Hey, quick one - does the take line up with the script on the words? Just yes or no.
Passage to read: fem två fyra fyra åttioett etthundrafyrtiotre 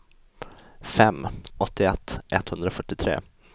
no